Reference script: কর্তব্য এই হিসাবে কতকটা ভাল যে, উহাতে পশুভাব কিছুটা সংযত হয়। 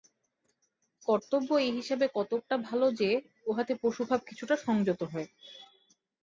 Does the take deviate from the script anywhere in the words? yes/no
no